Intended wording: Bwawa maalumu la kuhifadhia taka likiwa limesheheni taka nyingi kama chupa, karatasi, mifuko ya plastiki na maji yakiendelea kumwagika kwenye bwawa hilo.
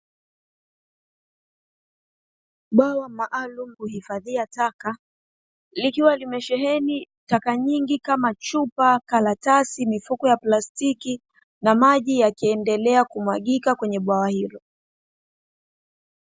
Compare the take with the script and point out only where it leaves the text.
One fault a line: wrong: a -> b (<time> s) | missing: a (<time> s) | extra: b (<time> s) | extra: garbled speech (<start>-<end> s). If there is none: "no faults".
missing: la (3.8 s)